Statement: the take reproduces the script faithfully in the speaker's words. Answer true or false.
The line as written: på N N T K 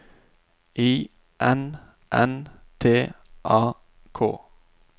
false